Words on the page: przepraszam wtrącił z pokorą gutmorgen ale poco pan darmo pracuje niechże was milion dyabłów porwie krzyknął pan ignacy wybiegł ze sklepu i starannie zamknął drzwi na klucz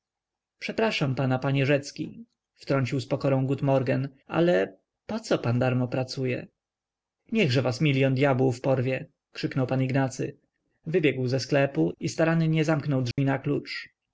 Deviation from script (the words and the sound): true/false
true